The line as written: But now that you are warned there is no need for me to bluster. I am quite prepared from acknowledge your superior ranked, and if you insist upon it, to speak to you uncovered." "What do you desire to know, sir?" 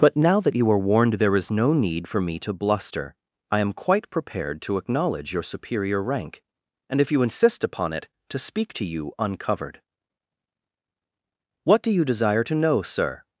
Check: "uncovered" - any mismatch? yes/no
no